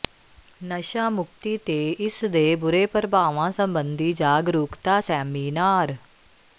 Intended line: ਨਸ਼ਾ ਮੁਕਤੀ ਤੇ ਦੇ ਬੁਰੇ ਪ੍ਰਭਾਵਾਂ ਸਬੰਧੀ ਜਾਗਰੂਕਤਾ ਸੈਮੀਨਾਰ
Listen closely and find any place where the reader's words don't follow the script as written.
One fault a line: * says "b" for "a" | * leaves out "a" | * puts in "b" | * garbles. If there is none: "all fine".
* puts in "ਇਸ"